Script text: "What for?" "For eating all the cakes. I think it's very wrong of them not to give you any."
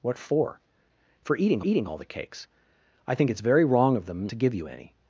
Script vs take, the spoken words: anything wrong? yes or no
yes